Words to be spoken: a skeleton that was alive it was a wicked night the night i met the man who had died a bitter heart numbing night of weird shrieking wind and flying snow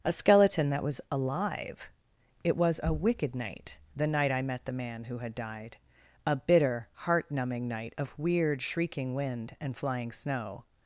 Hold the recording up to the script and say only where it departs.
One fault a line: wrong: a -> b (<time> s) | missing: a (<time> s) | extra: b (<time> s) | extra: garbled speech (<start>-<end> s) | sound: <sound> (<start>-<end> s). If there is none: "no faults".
no faults